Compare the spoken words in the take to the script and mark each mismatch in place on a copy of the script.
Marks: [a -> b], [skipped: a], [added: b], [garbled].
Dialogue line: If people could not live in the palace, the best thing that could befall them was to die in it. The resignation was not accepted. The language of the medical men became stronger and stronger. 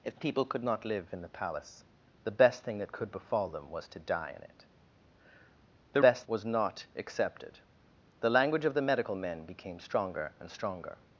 If people could not live in the palace, the best thing that could befall them was to die in it. The [resignation -> best] was not accepted. The language of the medical men became stronger and stronger.